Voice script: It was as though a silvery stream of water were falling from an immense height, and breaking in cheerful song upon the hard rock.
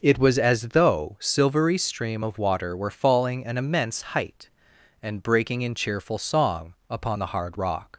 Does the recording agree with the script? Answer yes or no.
no